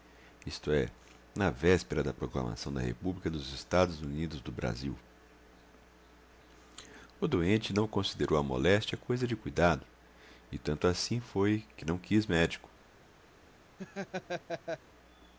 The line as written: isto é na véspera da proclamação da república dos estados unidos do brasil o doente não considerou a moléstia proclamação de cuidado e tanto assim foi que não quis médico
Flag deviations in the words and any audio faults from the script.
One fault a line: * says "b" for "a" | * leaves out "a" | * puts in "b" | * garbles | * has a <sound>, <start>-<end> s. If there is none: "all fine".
* says "coisa" for "proclamação"
* has a laugh, 13.8-14.8 s